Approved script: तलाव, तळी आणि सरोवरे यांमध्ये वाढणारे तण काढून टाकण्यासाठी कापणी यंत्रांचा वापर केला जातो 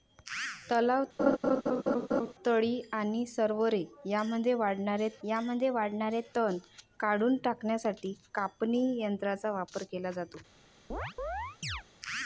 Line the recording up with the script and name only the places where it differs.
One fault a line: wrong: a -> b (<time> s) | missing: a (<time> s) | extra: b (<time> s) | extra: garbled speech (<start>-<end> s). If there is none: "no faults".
extra: यांमध्ये वाढणारे (5.2 s)